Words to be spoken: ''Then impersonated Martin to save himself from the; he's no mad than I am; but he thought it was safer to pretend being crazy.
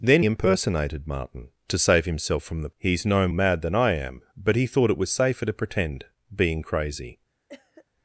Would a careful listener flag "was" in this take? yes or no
no